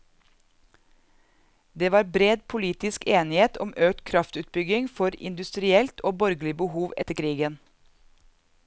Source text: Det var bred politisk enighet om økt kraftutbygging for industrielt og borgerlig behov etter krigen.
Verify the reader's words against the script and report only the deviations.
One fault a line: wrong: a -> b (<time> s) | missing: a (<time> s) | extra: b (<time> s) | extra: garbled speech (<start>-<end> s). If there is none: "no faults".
no faults